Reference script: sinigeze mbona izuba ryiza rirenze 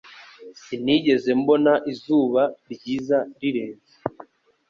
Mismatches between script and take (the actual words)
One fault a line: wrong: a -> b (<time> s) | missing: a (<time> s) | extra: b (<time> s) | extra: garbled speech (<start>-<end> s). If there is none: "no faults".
no faults